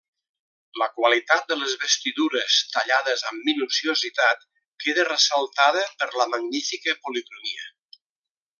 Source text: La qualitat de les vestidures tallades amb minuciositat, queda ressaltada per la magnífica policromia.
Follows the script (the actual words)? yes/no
yes